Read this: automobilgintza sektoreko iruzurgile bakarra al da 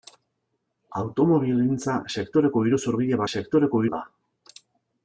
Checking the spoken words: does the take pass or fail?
fail